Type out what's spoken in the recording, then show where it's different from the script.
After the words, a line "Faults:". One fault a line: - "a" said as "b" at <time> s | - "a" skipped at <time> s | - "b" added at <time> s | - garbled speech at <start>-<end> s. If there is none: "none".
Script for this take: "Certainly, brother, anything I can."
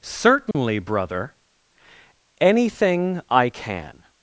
"Certainly, brother, anything I can."
Faults:
none